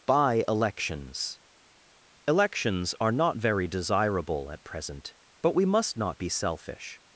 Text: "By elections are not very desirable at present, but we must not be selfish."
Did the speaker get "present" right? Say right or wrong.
right